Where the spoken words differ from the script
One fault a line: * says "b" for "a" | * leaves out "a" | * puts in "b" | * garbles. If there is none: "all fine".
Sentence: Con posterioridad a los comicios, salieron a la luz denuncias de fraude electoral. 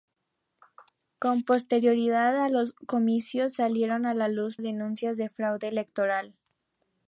all fine